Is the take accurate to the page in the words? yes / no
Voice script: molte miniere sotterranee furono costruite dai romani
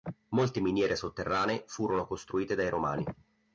yes